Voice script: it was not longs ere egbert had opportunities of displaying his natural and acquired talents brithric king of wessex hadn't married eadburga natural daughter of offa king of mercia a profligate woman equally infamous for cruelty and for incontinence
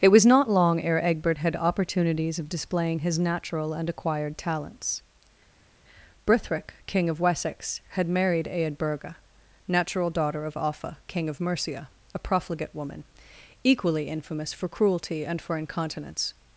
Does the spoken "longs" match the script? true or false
false